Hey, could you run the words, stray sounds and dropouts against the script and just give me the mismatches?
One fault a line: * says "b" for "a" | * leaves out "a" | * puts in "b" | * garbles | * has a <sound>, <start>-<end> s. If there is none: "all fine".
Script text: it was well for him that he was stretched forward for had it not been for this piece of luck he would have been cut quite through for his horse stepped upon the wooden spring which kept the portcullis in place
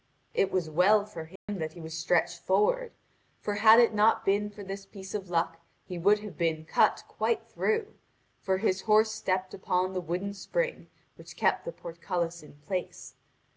* has a dropout, 1.4-1.5 s